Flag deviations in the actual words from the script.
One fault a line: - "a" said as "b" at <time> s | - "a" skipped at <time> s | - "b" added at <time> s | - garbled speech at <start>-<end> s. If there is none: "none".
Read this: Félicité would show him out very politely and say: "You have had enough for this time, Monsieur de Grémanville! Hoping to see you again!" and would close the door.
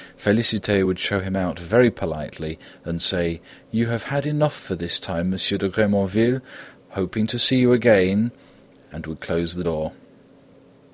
none